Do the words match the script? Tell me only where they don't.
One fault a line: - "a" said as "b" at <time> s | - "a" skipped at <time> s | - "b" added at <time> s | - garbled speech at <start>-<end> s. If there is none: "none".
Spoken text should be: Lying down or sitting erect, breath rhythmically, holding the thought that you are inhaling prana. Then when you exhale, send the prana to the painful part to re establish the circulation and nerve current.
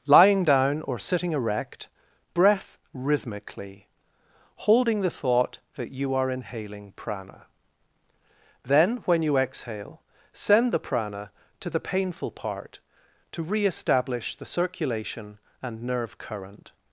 none